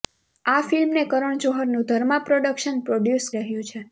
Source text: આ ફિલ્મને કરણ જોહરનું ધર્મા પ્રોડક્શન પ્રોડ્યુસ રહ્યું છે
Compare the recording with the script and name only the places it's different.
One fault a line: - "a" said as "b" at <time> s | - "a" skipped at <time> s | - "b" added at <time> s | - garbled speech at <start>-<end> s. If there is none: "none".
none